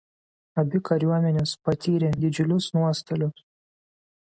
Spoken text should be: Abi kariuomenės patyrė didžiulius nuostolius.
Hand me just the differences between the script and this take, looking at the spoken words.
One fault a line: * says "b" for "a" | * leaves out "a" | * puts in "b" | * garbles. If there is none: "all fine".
all fine